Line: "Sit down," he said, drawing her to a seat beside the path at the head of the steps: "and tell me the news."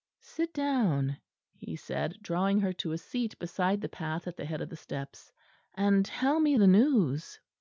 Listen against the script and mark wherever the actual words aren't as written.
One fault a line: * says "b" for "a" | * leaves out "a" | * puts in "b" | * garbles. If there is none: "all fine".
all fine